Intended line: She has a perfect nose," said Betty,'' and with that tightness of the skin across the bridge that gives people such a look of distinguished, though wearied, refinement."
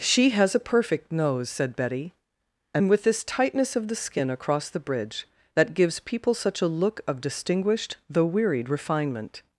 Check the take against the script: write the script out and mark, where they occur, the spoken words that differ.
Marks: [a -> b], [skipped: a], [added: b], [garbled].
She has a perfect nose," said Betty,'' and with [that -> this] tightness of the skin across the bridge that gives people such a look of distinguished, though wearied, refinement."